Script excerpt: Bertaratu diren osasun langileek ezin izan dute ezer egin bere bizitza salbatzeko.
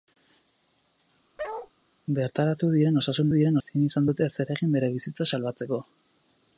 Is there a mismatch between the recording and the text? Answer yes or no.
yes